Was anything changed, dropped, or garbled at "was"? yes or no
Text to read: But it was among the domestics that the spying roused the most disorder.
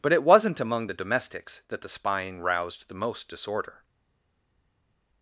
yes